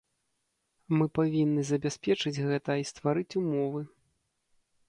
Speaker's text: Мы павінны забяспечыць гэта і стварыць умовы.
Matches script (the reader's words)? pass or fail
pass